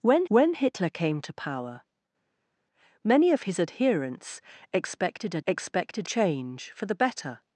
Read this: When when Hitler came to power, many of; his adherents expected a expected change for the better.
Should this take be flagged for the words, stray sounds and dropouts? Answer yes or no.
no